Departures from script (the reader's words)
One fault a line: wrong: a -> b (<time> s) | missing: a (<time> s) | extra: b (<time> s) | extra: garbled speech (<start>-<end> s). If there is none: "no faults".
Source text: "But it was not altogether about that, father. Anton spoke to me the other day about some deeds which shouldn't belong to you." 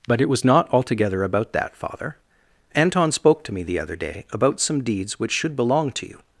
wrong: shouldn't -> should (5.3 s)